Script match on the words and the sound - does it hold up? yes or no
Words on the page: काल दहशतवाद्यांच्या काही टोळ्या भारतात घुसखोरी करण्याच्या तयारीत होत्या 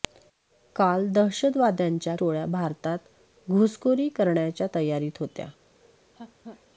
no